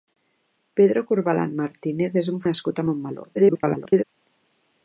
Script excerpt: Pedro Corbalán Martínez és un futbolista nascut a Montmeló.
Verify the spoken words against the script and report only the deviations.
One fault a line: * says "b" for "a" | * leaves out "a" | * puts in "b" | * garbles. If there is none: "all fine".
* leaves out "futbolista"
* garbles